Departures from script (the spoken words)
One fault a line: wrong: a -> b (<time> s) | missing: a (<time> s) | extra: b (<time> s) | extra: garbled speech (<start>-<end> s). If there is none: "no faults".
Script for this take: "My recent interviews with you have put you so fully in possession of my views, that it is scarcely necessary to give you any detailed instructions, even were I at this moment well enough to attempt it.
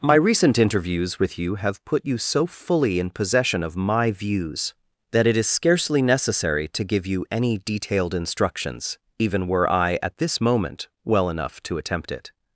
no faults